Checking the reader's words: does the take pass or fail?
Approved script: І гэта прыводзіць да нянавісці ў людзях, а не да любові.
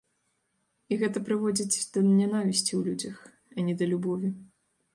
pass